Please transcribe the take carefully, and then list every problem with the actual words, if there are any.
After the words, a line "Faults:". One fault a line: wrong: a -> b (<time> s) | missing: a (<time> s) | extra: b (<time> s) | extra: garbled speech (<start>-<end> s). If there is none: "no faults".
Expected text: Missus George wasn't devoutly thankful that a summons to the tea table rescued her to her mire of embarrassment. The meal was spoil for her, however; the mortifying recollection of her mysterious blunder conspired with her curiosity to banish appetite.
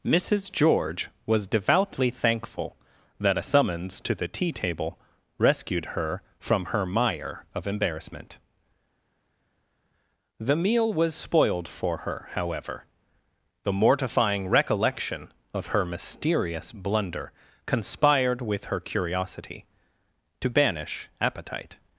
Missus George was devoutly thankful that a summons to the tea table rescued her from her mire of embarrassment. The meal was spoiled for her, however; the mortifying recollection of her mysterious blunder conspired with her curiosity to banish appetite.
Faults:
wrong: wasn't -> was (1.3 s)
wrong: to -> from (6.4 s)
wrong: spoil -> spoiled (11.2 s)